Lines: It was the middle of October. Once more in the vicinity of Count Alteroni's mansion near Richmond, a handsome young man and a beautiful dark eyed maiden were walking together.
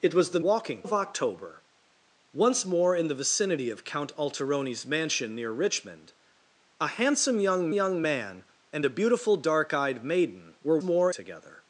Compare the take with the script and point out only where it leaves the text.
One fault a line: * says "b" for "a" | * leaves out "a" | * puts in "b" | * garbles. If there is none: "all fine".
* says "walking" for "middle"
* puts in "young"
* says "more" for "walking"